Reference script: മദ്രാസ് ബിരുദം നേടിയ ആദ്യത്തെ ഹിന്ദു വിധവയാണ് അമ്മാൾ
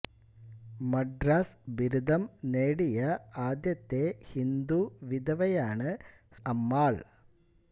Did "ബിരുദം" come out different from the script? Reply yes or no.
no